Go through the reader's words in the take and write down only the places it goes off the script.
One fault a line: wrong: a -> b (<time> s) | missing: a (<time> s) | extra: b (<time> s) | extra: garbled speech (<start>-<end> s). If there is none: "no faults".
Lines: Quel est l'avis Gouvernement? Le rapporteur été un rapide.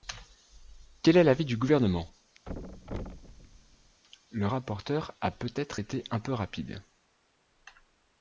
extra: du (1.4 s)
extra: a peut être (5.2 s)
extra: peu (6.2 s)